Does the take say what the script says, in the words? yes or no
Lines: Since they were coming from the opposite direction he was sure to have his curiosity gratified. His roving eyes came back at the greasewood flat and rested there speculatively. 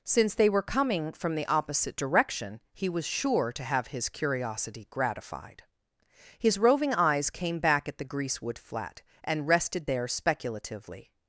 yes